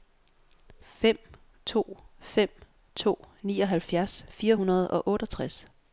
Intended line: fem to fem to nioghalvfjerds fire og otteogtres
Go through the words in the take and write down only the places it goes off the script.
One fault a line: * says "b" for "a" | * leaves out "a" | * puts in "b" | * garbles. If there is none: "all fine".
* puts in "hundrede"